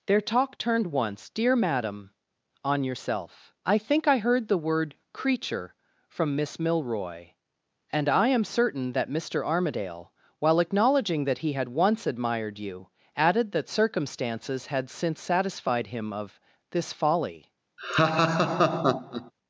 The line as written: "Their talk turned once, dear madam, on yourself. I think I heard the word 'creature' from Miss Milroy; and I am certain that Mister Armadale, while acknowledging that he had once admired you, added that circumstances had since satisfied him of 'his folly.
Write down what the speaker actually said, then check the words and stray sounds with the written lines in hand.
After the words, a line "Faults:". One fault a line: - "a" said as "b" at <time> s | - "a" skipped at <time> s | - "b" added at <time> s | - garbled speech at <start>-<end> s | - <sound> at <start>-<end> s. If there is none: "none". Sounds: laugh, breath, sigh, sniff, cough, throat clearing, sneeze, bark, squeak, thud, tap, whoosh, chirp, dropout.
"Their talk turned once, dear madam, on yourself. I think I heard the word 'creature' from Miss Milroy; and I am certain that Mister Armadale, while acknowledging that he had once admired you, added that circumstances had since satisfied him of 'this folly.
Faults:
- "his" said as "this" at 16.7 s
- laugh at 17.8-19.3 s